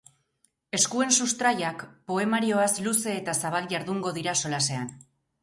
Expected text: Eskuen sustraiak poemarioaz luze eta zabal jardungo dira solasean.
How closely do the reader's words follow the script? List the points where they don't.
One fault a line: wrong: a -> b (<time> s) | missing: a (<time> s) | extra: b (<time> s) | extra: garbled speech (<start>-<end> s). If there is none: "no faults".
no faults